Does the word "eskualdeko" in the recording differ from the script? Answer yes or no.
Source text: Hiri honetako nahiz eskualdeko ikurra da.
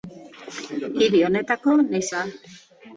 yes